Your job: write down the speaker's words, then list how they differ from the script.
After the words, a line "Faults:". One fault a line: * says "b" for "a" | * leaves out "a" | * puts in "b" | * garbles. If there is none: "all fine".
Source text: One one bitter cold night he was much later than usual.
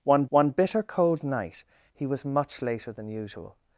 One one bitter cold night he was much later than usual.
Faults:
all fine